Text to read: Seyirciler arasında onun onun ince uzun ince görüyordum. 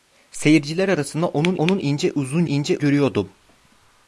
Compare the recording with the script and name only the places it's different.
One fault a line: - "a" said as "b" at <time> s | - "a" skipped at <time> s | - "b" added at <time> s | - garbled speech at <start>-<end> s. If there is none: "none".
none